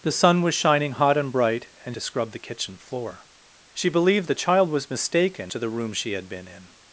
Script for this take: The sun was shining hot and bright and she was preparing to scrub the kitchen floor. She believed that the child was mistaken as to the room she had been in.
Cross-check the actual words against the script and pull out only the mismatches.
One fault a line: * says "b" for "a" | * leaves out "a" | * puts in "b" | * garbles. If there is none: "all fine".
* leaves out "she was preparing"
* leaves out "that"
* leaves out "as"